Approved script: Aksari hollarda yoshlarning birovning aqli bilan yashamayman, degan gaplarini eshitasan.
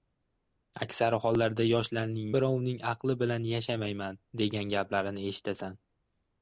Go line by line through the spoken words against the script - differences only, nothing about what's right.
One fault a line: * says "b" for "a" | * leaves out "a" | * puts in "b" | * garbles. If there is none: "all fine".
all fine